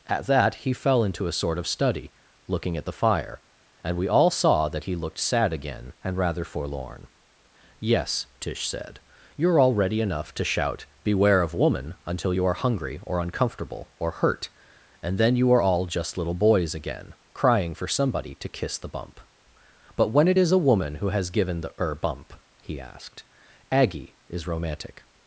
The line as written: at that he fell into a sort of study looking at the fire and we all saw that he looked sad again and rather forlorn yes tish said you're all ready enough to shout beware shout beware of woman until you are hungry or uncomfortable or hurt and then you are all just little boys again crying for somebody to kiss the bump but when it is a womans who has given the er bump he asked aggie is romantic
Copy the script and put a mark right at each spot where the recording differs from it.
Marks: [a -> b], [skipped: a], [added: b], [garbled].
at that he fell into a sort of study looking at the fire and we all saw that he looked sad again and rather forlorn yes tish said you're all ready enough to shout beware [skipped: shout beware] of woman until you are hungry or uncomfortable or hurt and then you are all just little boys again crying for somebody to kiss the bump but when it is a [womans -> woman] who has given the er bump he asked aggie is romantic